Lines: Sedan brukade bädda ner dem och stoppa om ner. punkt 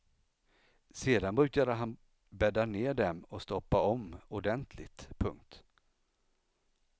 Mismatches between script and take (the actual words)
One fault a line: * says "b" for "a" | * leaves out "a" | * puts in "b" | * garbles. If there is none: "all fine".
* puts in "han"
* says "ordentligt" for "ner"